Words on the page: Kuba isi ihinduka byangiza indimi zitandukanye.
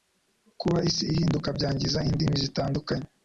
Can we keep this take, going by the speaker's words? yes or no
yes